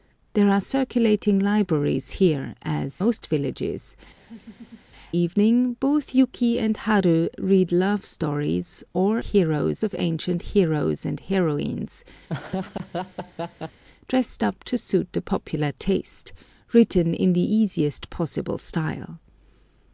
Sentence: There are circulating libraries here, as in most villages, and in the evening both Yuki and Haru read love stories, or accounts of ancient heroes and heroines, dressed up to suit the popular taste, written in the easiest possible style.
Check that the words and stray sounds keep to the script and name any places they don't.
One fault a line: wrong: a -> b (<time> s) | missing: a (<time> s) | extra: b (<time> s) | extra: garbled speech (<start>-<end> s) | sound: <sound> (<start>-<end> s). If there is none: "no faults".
missing: in (3.0 s)
missing: and in the (4.0 s)
sound: laugh (4.2-4.9 s)
wrong: accounts -> heroes (9.2 s)
sound: laugh (12.3-13.8 s)